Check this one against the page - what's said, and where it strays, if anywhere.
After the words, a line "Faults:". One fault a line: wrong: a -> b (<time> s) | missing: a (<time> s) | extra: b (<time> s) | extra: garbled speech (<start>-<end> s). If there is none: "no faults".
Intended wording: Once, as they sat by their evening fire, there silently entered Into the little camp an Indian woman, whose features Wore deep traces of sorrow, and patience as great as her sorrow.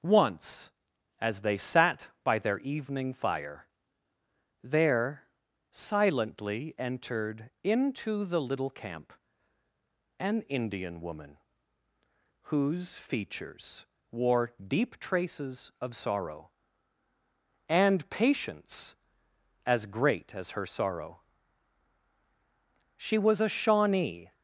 Once, as they sat by their evening fire, there silently entered Into the little camp an Indian woman, whose features Wore deep traces of sorrow, and patience as great as her sorrow. She was a Shawnee
Faults:
extra: She was a Shawnee (23.0 s)